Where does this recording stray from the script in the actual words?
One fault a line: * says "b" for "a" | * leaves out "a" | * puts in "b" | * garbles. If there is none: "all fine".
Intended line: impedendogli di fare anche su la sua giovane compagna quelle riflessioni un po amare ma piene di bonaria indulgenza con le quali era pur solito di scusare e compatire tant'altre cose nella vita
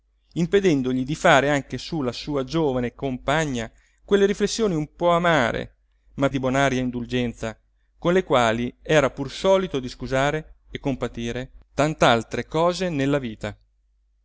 * leaves out "piene"